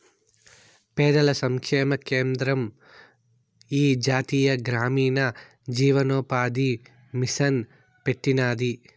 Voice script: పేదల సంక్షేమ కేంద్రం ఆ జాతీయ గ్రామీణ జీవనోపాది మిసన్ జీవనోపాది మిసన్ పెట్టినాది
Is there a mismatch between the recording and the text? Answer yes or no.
yes